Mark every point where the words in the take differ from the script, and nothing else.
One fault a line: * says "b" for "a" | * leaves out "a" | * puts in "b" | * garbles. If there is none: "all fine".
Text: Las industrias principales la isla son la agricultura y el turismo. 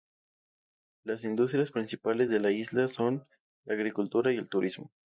* puts in "de"